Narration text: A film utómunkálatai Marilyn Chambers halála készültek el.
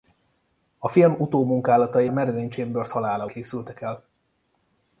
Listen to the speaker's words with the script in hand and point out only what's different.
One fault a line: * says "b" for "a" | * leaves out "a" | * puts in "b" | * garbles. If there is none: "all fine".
all fine